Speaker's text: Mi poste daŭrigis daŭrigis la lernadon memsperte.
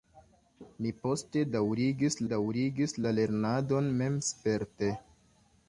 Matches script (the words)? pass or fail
pass